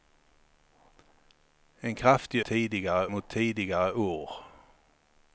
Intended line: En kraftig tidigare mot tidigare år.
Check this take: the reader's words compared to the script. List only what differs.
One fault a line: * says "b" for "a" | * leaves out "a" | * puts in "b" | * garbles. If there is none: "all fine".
all fine